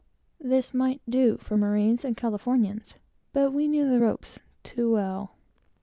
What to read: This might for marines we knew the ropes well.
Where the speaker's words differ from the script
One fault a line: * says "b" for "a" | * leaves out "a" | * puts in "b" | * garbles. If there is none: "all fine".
* puts in "do"
* puts in "and Californians but"
* puts in "too"